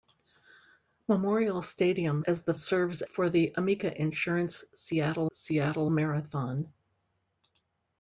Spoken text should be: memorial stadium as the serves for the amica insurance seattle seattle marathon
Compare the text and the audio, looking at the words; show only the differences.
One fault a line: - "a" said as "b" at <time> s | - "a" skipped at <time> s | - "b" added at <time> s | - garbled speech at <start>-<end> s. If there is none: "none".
none